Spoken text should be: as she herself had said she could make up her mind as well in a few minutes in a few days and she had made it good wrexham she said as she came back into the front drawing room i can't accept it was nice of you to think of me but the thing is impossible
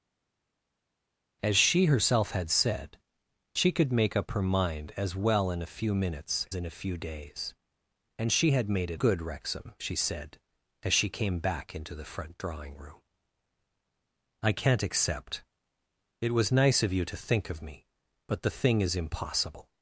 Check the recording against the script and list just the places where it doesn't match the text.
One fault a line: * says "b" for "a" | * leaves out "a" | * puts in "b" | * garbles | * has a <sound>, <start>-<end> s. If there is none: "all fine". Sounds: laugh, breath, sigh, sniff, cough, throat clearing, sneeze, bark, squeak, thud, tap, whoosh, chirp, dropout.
all fine